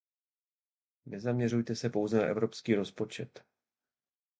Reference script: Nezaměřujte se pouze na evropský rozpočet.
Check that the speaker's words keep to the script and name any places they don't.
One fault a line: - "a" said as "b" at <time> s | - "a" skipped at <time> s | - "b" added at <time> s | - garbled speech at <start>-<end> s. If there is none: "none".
none